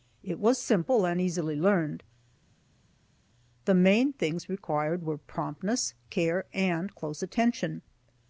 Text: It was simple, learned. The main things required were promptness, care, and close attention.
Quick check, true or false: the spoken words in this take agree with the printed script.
false